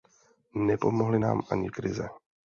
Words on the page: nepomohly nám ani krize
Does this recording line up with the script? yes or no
yes